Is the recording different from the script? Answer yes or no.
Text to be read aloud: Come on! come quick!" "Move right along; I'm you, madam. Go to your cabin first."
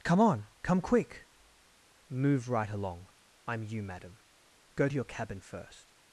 no